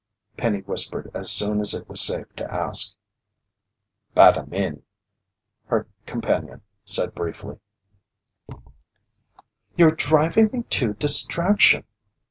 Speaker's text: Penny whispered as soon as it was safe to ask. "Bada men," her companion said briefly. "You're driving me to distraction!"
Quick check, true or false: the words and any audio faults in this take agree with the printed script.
false